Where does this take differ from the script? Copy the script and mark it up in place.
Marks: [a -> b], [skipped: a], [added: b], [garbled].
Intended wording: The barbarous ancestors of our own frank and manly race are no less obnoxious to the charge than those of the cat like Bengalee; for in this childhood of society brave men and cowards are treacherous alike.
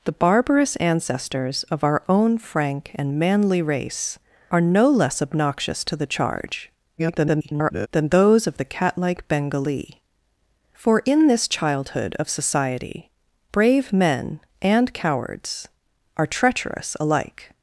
The barbarous ancestors of our own frank and manly race are no less obnoxious to the charge [garbled] than those of the cat like Bengalee; for in this childhood of society brave men and cowards are treacherous alike.